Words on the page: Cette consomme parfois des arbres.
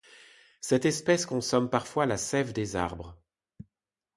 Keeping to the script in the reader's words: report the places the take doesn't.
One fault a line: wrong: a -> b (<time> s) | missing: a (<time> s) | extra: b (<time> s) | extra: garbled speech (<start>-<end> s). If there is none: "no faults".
extra: espèce (0.8 s)
extra: la sève (2.1 s)